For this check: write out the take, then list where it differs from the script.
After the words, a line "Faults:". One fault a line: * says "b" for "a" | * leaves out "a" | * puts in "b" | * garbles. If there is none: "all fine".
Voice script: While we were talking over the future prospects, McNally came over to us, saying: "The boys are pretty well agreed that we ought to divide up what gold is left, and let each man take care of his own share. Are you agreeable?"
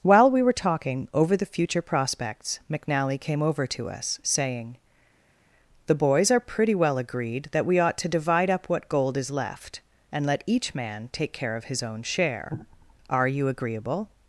While we were talking over the future prospects, McNally came over to us, saying: "The boys are pretty well agreed that we ought to divide up what gold is left, and let each man take care of his own share. Are you agreeable?"
Faults:
all fine